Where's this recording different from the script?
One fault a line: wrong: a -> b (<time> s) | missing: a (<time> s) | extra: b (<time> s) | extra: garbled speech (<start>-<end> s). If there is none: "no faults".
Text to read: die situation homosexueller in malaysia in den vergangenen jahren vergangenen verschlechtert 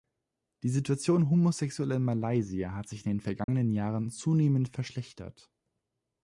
extra: hat sich (2.7 s)
wrong: vergangenen -> zunehmend (4.1 s)